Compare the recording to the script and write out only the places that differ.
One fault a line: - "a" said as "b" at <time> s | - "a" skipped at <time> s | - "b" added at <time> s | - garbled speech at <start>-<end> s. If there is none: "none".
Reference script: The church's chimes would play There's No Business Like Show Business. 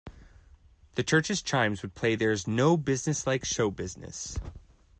none